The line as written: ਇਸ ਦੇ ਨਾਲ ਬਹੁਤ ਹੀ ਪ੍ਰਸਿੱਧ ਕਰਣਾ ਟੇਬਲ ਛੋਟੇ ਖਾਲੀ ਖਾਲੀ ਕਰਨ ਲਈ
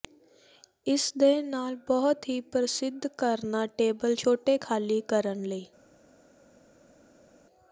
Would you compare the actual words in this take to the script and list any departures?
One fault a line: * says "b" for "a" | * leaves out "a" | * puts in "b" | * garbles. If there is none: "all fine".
* leaves out "ਖਾਲੀ"